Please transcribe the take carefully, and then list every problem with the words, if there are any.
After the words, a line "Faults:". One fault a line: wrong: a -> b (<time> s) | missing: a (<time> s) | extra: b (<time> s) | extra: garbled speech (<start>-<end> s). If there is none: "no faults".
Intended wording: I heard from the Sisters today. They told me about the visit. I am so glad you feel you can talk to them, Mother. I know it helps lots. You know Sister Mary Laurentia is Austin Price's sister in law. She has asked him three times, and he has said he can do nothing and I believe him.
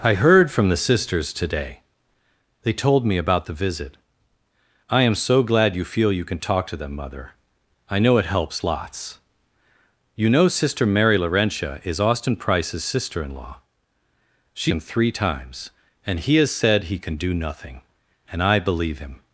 I heard from the Sisters today. They told me about the visit. I am so glad you feel you can talk to them, Mother. I know it helps lots. You know Sister Mary Laurentia is Austin Price's sister in law. She him three times, and he has said he can do nothing and I believe him.
Faults:
missing: has asked (14.7 s)